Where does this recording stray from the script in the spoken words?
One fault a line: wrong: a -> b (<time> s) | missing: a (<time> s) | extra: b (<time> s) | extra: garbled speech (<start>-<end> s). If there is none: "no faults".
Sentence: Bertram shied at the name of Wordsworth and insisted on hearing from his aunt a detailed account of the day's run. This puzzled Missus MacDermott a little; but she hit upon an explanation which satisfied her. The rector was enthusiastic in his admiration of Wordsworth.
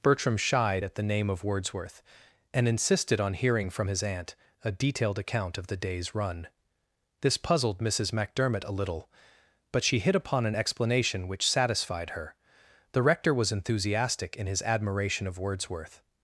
no faults